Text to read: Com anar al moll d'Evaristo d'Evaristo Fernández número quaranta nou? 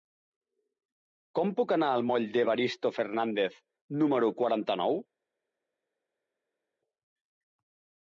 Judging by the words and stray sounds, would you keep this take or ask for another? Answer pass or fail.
fail